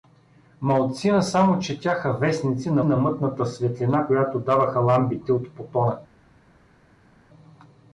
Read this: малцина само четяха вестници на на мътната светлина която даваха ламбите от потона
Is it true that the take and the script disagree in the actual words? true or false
false